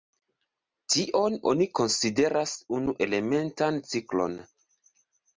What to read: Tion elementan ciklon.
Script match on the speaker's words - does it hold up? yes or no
no